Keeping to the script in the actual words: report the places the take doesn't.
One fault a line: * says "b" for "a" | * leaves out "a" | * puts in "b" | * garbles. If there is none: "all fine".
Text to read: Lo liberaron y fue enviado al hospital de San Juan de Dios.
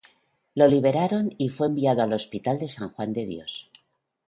all fine